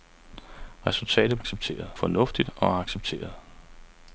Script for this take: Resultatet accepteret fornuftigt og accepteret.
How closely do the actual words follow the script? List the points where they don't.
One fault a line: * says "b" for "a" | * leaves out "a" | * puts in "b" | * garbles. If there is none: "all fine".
all fine